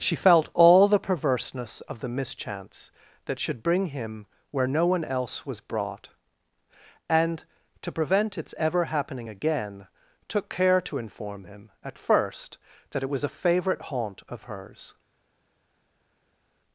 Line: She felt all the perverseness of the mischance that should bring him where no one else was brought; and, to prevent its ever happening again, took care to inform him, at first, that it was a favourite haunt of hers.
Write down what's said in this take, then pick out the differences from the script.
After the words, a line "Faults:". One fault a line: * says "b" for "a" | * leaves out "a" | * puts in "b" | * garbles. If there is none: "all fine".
She felt all the perverseness of the mischance that should bring him where no one else was brought; and, to prevent its ever happening again, took care to inform him, at first, that it was a favourite haunt of hers.
Faults:
all fine